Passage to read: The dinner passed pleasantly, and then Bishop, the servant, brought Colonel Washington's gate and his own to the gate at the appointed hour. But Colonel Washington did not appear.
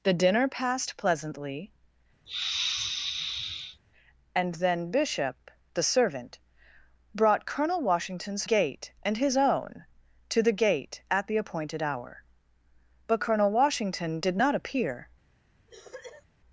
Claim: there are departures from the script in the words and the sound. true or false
true